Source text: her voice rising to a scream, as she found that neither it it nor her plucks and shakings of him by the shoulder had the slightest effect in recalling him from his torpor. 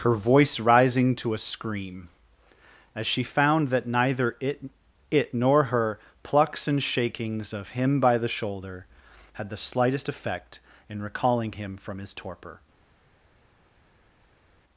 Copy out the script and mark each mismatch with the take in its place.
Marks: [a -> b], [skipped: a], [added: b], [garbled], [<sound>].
her voice rising to a scream, as she found that neither it it nor her plucks and shakings of him by the shoulder had the slightest effect in recalling him from his torpor.